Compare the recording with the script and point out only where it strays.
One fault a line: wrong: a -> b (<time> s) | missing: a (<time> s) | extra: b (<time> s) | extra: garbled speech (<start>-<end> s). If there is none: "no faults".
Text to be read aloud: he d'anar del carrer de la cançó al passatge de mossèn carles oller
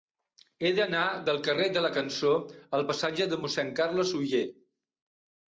no faults